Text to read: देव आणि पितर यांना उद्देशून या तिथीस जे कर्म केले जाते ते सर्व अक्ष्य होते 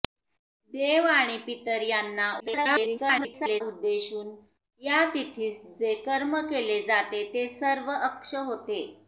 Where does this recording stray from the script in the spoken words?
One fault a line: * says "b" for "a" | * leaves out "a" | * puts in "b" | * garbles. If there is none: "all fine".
* garbles